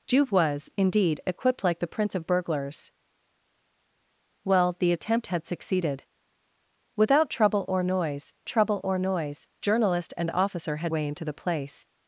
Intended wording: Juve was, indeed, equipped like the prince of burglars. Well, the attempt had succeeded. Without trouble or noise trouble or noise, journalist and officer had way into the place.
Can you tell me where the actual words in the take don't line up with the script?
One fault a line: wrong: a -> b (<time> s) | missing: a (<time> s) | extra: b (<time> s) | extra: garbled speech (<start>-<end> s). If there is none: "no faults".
no faults